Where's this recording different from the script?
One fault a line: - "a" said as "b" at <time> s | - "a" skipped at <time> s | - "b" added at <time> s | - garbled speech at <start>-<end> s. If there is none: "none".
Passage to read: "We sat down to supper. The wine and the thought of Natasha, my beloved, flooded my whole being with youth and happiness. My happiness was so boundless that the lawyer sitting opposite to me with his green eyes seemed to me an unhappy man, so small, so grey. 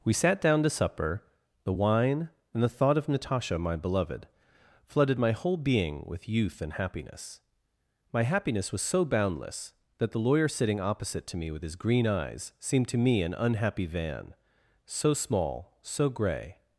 - "man" said as "van" at 13.9 s